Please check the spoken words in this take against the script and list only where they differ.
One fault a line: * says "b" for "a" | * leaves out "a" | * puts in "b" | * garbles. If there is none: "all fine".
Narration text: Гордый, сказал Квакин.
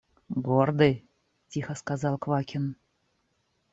* puts in "тихо"